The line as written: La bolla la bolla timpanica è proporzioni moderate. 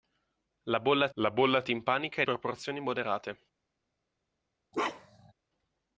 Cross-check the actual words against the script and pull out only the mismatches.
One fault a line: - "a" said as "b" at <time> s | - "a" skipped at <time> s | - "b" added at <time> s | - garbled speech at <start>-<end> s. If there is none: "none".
none